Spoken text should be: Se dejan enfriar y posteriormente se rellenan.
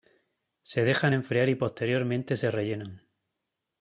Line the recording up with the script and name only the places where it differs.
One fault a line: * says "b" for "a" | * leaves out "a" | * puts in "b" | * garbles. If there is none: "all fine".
all fine